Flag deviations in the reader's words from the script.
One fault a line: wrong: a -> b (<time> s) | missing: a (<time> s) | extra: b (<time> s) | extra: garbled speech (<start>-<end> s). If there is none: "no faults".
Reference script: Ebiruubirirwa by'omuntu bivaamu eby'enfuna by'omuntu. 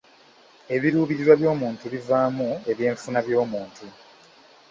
no faults